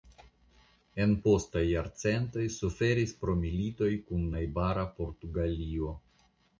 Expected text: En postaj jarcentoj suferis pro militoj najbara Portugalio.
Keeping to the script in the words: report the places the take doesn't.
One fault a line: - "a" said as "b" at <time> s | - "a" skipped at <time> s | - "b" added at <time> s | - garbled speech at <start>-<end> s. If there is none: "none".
- "kun" added at 4.1 s